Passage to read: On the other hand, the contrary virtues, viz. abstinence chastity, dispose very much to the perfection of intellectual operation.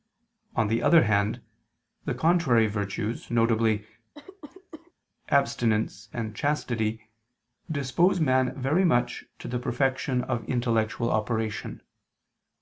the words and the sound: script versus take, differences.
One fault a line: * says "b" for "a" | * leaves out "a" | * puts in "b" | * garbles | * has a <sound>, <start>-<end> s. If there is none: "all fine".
* has a cough, 4.1-4.9 s
* puts in "and"
* puts in "man"